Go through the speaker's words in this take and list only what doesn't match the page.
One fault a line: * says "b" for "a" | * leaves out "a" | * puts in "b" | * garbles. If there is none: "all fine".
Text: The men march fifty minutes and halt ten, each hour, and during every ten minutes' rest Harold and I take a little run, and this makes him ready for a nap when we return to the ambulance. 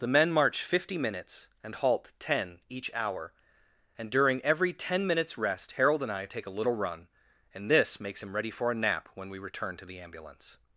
all fine